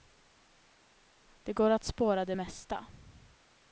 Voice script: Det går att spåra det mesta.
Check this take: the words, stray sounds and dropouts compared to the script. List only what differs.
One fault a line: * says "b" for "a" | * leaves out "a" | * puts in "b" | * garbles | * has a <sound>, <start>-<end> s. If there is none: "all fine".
all fine